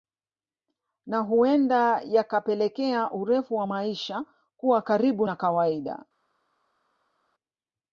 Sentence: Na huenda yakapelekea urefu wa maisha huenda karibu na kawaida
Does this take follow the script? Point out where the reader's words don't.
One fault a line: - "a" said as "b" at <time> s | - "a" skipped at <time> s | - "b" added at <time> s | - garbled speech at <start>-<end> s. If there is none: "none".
- "huenda" said as "kuwa" at 4.6 s